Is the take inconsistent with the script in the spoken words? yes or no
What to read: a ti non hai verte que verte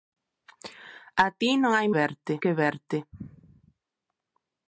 no